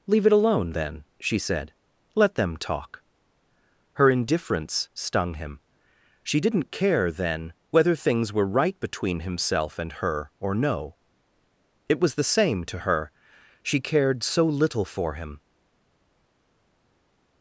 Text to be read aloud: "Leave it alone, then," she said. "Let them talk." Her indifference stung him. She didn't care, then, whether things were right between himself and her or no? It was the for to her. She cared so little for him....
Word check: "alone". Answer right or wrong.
right